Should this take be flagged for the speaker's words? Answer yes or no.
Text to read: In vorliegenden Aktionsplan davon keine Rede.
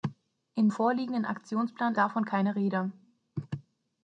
no